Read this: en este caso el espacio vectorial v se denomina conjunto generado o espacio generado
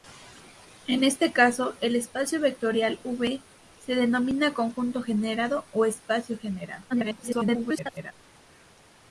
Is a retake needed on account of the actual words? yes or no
yes